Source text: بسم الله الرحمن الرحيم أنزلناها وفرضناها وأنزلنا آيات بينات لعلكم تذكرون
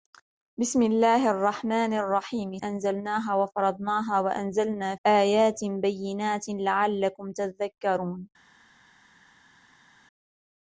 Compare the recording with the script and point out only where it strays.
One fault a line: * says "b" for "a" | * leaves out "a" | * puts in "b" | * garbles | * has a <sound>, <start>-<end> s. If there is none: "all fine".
all fine